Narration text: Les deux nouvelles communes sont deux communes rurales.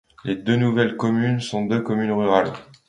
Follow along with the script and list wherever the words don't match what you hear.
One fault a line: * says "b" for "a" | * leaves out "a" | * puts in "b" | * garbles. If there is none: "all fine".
all fine